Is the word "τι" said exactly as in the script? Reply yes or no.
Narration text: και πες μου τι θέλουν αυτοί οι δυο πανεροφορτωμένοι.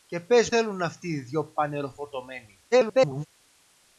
no